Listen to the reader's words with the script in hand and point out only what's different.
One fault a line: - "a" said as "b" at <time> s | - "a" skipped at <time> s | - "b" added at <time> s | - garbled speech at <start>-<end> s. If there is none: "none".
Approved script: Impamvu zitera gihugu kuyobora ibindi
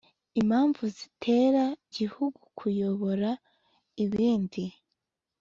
none